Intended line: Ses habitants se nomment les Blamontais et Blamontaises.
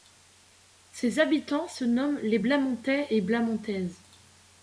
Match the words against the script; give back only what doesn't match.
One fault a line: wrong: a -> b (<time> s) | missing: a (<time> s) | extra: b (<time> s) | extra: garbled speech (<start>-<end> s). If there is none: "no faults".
no faults